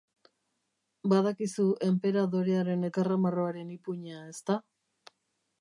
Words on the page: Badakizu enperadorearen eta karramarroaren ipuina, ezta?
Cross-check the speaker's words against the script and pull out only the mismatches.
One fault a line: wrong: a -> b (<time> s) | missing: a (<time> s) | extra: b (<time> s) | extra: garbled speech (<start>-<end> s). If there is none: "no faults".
missing: eta (2.9 s)